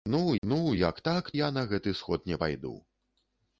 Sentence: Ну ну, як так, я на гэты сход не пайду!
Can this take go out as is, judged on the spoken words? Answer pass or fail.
pass